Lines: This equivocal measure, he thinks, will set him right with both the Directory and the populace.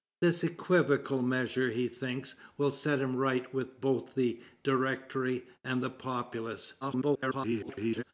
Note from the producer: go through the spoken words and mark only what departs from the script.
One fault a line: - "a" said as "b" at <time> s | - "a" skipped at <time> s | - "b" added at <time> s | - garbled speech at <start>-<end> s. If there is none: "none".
- garbled speech at 6.8-8.0 s